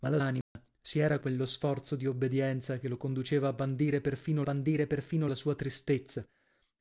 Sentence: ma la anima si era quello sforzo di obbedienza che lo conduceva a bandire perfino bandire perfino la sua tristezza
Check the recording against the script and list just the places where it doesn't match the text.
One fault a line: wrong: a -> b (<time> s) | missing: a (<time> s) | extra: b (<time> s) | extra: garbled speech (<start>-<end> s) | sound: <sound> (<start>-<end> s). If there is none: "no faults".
sound: dropout (0.4-0.6 s)